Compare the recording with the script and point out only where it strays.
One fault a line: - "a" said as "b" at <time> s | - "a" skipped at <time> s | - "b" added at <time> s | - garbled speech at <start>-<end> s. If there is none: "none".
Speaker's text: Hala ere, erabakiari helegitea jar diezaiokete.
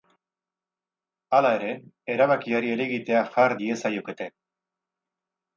none